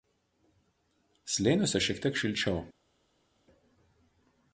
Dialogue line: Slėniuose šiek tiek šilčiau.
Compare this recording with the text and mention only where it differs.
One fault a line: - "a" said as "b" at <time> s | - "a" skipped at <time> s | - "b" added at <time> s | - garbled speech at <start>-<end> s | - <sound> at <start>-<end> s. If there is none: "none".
none